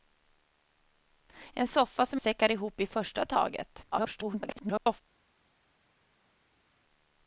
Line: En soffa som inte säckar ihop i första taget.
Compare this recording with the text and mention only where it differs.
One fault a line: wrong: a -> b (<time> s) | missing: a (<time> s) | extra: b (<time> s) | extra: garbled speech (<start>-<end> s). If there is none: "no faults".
missing: inte (2.2 s)
extra: garbled speech (3.9-5.0 s)